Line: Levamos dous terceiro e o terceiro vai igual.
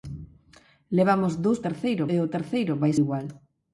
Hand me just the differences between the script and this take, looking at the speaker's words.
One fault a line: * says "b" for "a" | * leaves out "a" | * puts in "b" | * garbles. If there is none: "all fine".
all fine